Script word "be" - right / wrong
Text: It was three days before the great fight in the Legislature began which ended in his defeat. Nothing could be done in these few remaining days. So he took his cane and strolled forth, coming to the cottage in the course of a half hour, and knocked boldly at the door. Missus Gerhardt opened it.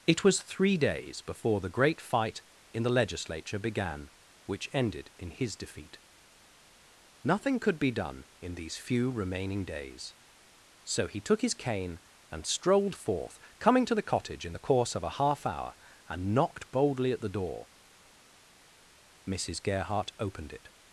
right